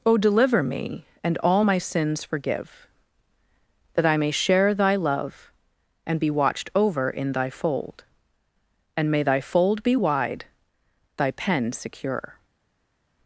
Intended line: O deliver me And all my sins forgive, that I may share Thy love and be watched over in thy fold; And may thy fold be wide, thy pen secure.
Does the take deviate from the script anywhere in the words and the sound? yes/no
no